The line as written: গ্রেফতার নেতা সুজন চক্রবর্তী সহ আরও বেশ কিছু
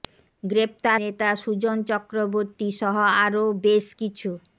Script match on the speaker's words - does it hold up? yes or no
yes